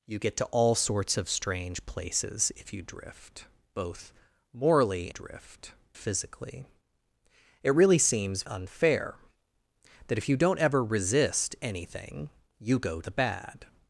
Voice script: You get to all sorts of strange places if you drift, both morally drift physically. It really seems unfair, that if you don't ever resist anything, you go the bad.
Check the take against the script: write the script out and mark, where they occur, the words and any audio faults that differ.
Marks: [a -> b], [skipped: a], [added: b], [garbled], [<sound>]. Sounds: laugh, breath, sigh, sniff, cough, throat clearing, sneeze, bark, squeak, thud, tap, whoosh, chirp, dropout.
You get to all sorts of strange places if you drift, both morally drift physically. It really seems unfair, that if you don't ever resist anything, you go the bad.